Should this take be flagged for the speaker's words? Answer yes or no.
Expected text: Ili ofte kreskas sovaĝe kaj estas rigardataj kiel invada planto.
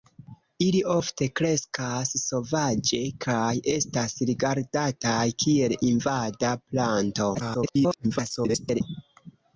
yes